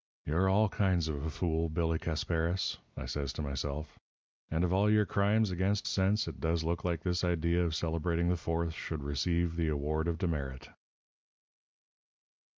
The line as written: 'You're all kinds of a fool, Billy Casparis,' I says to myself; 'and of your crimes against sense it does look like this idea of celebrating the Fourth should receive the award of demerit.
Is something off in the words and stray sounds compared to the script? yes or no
yes